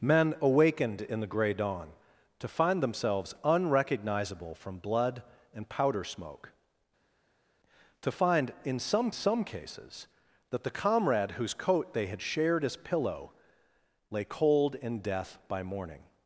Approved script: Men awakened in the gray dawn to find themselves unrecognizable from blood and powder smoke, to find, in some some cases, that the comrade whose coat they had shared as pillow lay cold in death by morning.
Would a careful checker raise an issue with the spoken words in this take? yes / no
no